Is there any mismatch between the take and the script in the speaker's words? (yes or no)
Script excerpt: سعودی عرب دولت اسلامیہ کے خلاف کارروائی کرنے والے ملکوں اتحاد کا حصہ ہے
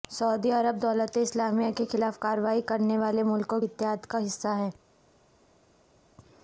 no